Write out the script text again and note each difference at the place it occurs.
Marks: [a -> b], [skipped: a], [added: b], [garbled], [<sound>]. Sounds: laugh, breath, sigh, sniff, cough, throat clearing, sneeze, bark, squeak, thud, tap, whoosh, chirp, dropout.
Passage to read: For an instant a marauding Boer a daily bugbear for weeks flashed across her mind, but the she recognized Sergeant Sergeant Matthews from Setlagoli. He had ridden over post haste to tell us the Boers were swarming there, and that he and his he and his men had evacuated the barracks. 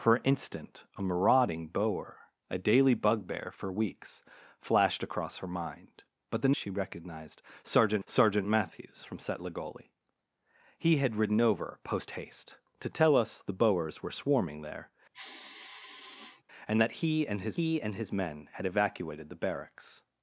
For an instant a marauding Boer a daily bugbear for weeks flashed across her mind, but the she recognized Sergeant Sergeant Matthews from Setlagoli. He had ridden over post haste to tell us the Boers were swarming there, [sigh] and that he and his he and his men had evacuated the barracks.